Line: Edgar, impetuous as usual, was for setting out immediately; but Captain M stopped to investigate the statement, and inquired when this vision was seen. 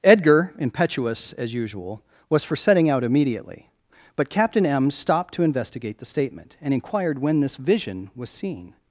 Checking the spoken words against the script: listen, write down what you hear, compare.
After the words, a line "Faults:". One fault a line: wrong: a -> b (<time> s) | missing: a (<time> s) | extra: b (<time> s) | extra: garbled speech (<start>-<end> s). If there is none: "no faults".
Edgar, impetuous as usual, was for setting out immediately; but Captain M stopped to investigate the statement, and inquired when this vision was seen.
Faults:
no faults